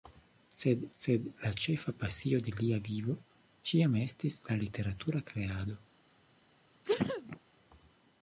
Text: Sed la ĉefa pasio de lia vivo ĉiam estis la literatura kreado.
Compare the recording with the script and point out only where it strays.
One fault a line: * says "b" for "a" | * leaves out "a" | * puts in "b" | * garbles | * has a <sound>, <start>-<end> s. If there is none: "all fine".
* puts in "sed"
* has a sneeze, 6.8-7.4 s